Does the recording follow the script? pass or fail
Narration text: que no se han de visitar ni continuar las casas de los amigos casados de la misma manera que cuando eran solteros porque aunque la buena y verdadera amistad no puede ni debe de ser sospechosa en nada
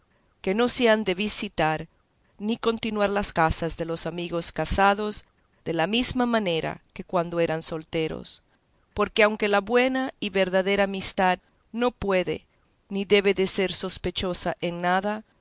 pass